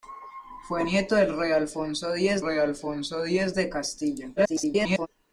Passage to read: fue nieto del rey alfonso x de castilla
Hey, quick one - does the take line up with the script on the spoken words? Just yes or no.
no